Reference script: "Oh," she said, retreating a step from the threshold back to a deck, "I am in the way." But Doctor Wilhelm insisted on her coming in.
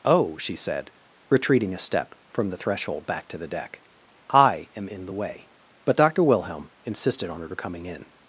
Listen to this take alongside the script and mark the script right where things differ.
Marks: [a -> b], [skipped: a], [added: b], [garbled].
"Oh," she said, retreating a step from the threshold back to [a -> the] deck, "I am in the way." But Doctor Wilhelm insisted on her coming in.